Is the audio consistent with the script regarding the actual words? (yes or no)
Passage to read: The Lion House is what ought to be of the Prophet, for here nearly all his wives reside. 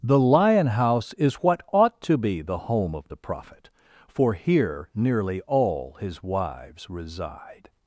no